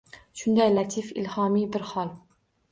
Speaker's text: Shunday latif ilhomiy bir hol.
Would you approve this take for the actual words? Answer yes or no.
yes